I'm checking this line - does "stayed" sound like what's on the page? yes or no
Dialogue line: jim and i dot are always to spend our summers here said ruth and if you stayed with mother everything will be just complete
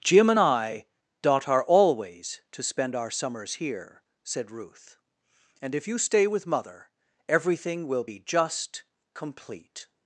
no